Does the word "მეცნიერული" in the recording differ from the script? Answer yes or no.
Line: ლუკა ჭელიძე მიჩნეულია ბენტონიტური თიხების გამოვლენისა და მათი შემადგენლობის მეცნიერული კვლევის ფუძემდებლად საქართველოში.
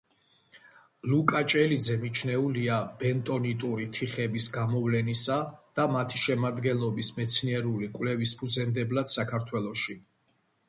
no